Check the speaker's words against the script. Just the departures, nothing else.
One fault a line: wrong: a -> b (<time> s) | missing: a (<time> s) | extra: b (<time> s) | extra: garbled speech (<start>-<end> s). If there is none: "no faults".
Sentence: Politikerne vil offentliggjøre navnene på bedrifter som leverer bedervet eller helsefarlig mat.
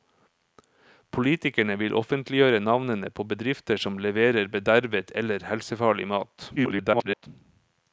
extra: garbled speech (6.6-7.3 s)